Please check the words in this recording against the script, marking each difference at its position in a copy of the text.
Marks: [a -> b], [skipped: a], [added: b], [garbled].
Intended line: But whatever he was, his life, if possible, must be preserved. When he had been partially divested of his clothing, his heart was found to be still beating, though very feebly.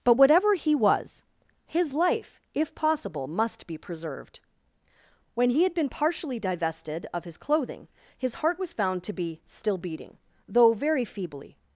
But whatever he was, his life, if possible, must be preserved. When he had been partially divested of his clothing, his heart was found to be still beating, though very feebly.